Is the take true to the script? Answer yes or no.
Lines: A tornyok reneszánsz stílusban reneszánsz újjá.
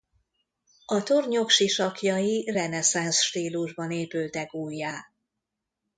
no